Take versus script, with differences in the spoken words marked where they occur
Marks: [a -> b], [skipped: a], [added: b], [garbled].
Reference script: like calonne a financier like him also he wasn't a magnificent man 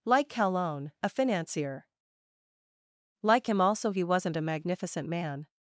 like calonne a financier like him also he wasn't a magnificent man